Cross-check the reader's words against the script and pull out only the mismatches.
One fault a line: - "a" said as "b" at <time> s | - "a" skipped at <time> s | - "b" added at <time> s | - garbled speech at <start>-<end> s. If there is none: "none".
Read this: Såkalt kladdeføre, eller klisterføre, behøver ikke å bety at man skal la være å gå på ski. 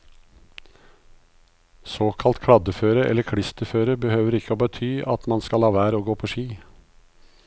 none